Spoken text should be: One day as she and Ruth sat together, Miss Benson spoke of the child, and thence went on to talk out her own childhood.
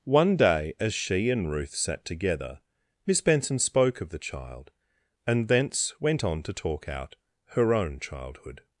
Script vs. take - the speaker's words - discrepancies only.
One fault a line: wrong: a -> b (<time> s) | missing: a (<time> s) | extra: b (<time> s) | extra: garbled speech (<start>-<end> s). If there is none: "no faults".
no faults